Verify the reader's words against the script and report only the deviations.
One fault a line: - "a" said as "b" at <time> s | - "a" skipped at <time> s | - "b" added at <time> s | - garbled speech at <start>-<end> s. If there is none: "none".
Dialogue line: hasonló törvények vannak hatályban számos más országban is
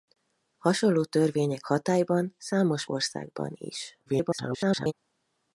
- "vannak" skipped at 1.7 s
- "más" skipped at 2.8 s
- garbled speech at 4.1-4.9 s